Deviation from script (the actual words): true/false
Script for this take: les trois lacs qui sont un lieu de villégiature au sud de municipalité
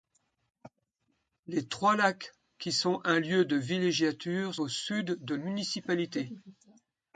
false